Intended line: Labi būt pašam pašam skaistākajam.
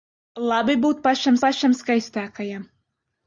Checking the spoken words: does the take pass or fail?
pass